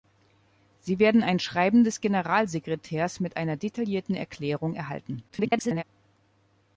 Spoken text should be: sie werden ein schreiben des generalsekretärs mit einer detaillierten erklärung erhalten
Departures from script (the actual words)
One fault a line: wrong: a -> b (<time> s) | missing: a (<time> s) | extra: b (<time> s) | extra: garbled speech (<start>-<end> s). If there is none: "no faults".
extra: garbled speech (5.3-5.8 s)